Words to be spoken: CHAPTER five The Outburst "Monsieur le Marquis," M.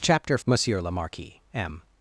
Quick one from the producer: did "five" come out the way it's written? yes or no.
no